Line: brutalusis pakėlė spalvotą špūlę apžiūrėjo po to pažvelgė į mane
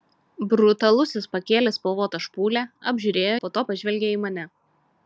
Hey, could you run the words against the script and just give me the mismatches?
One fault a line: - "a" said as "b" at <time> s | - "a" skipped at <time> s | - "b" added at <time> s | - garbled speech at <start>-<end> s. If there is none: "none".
none